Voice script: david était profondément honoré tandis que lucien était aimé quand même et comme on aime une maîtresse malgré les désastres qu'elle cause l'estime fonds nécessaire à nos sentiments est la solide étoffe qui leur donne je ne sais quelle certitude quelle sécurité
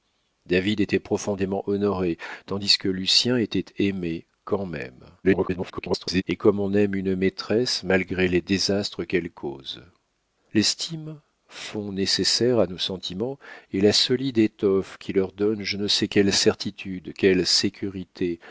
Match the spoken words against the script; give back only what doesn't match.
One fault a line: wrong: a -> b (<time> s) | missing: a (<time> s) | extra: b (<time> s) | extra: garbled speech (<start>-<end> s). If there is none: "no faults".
extra: garbled speech (5.2-6.2 s)